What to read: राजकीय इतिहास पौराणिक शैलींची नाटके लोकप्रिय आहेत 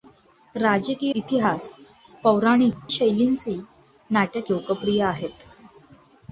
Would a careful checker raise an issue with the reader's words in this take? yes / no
no